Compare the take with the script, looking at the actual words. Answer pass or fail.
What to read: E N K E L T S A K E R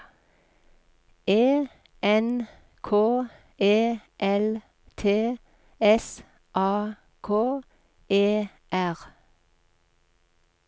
pass